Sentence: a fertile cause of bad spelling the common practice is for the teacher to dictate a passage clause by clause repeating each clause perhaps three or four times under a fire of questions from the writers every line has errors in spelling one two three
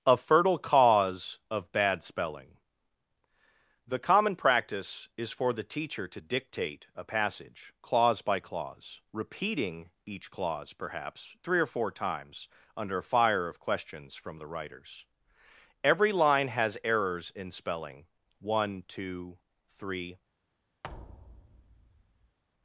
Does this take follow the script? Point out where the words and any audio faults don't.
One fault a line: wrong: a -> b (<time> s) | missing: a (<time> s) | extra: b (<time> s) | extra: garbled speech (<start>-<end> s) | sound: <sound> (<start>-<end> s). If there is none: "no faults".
sound: thud (20.8-22.4 s)